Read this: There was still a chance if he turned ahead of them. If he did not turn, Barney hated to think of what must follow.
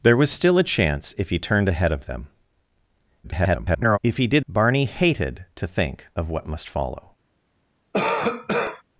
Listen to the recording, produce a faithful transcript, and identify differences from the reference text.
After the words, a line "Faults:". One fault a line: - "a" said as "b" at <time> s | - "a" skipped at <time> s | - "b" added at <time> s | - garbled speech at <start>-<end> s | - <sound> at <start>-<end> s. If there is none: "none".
There was still a chance if he turned ahead of them. [garbled] If he did Barney hated to think of what must follow.
Faults:
- garbled speech at 3.2-4.0 s
- "not turn" skipped at 4.4 s
- cough at 7.9-8.8 s